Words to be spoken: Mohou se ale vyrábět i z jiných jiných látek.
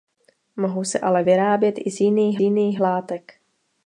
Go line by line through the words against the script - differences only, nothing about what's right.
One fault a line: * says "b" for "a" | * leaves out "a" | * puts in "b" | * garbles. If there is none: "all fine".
all fine